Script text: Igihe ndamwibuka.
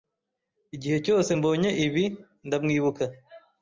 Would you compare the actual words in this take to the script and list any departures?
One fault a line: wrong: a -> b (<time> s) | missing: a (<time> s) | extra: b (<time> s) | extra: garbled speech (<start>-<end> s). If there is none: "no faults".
extra: cyose mbonye ibi (1.1 s)